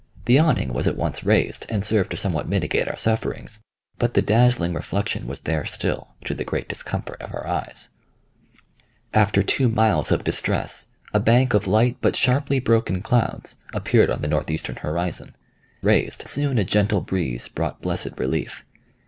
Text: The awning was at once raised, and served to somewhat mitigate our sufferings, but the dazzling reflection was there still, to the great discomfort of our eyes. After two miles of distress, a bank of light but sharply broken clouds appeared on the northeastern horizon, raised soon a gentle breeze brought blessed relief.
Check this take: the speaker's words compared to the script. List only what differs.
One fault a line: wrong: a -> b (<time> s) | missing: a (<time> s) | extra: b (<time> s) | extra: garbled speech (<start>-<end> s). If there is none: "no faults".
no faults